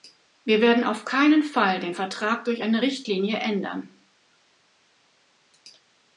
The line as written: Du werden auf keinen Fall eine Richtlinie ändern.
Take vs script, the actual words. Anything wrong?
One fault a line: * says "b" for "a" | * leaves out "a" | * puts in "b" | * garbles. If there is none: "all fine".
* says "Wir" for "Du"
* puts in "den Vertrag durch"